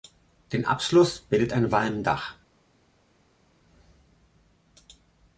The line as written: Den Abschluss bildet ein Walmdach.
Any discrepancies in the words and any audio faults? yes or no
no